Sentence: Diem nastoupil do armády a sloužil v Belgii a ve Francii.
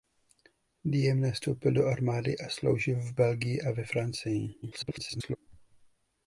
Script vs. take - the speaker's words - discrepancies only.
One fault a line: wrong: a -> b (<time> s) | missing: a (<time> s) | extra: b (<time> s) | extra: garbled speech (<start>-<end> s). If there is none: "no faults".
extra: garbled speech (4.6-5.4 s)